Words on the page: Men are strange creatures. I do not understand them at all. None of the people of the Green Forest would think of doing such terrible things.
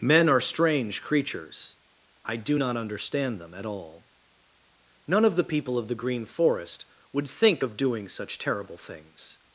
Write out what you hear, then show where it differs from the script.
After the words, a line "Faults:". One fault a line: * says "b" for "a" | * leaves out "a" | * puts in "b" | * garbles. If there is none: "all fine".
Men are strange creatures. I do not understand them at all. None of the people of the Green Forest would think of doing such terrible things.
Faults:
all fine